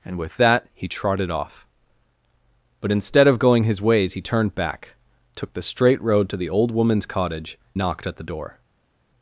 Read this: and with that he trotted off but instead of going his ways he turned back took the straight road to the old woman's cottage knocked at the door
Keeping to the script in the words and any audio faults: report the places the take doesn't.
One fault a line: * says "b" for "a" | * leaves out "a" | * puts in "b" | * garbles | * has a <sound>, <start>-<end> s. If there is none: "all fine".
all fine